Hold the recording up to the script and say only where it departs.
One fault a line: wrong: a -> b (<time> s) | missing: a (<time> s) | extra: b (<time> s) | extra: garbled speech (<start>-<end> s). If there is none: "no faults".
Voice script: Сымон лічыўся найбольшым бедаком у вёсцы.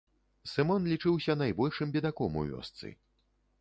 no faults